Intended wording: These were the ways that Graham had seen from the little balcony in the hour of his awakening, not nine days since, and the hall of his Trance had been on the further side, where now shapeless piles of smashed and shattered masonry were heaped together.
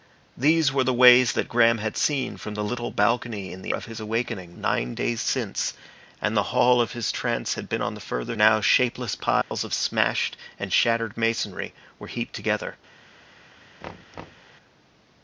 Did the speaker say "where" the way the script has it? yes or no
no